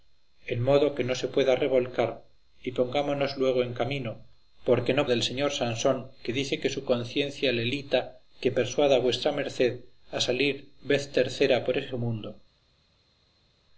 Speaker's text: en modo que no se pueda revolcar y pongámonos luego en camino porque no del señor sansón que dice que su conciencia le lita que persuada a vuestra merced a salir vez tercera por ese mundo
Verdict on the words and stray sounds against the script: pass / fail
pass